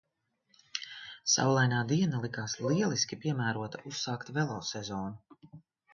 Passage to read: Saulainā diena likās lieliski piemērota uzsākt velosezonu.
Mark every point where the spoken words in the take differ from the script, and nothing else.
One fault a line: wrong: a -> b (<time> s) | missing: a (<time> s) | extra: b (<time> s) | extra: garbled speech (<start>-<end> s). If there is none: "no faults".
no faults